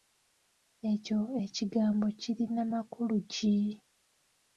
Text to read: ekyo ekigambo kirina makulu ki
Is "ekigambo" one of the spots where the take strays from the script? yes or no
no